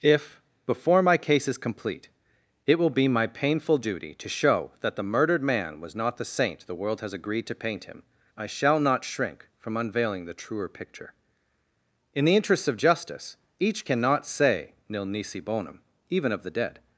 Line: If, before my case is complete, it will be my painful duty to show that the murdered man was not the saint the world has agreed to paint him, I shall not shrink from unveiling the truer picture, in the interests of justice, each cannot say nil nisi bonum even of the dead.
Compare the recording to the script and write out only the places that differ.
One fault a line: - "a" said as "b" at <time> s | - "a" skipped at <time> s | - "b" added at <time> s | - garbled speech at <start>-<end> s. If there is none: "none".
none